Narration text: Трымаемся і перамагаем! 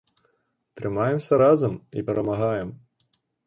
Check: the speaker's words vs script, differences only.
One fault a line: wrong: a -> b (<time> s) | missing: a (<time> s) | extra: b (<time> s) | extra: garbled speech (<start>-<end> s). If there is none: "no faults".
extra: разам (1.4 s)